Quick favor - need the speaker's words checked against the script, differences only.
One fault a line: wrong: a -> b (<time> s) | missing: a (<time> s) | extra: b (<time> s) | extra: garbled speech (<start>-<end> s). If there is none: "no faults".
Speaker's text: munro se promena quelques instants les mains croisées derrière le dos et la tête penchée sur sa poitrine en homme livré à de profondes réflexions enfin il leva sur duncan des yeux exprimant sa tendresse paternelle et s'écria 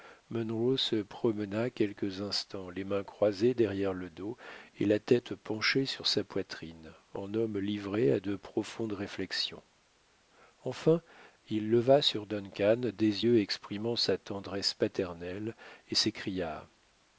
no faults